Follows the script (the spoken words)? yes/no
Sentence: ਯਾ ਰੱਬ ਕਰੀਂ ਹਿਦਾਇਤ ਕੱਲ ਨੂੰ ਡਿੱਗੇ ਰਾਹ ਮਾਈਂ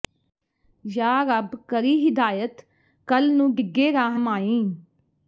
yes